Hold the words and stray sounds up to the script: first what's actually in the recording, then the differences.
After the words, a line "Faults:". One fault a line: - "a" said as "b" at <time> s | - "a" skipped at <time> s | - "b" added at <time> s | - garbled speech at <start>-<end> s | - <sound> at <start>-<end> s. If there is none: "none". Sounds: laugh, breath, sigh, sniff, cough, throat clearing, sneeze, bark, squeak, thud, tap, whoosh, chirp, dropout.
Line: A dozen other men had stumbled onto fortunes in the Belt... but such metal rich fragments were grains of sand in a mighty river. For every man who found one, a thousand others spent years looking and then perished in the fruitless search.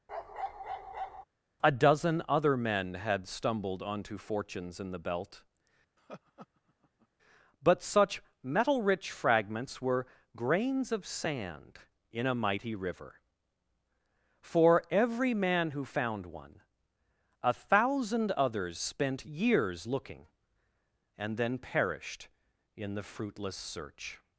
A dozen other men had stumbled onto fortunes in the Belt... but such metal rich fragments were grains of sand in a mighty river. For every man who found one, a thousand others spent years looking and then perished in the fruitless search.
Faults:
- bark at 0.1-1.2 s
- laugh at 6.0-7.1 s